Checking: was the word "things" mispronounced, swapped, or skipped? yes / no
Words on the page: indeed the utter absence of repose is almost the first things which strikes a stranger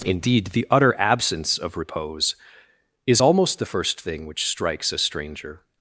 yes